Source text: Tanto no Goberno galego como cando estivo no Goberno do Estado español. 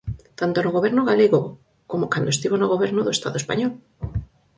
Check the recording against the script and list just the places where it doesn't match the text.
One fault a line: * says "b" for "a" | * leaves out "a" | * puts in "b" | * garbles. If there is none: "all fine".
all fine